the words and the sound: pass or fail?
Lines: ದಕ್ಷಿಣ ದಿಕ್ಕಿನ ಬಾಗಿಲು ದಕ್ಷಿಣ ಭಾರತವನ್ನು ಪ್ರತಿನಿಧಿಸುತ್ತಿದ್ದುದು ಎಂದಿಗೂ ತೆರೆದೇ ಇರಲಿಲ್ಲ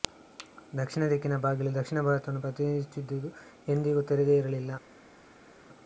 pass